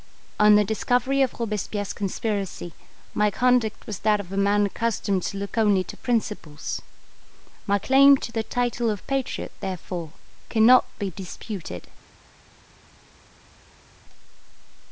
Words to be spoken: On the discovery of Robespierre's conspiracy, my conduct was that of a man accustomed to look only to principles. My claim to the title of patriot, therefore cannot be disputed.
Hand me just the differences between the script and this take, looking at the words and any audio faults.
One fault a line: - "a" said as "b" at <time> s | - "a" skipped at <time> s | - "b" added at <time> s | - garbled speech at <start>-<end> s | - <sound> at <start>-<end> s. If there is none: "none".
none